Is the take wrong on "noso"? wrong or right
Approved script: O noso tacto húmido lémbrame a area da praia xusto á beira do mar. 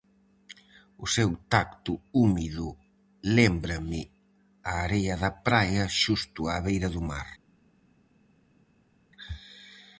wrong